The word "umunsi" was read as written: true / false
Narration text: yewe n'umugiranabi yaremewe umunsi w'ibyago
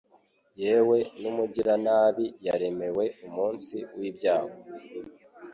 true